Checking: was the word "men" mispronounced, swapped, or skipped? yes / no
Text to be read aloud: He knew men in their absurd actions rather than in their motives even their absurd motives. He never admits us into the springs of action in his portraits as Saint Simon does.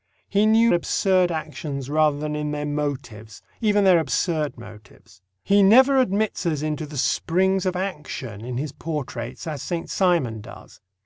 yes